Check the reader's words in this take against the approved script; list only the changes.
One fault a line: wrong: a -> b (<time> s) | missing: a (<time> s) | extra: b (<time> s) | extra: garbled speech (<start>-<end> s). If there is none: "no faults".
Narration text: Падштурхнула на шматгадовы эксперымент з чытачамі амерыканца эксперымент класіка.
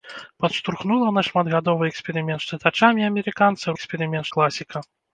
no faults